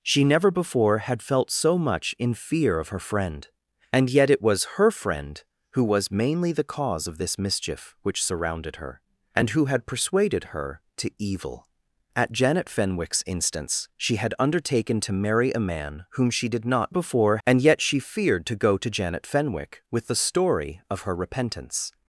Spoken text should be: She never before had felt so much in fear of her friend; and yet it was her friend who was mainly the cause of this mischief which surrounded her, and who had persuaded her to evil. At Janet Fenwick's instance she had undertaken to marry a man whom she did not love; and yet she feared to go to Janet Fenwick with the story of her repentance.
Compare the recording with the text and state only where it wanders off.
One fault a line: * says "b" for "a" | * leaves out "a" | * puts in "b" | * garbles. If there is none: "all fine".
* says "before" for "love"